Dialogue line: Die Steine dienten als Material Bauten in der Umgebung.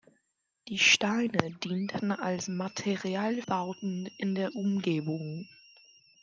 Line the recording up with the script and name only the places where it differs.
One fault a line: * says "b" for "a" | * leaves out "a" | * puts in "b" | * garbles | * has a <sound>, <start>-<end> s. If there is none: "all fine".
all fine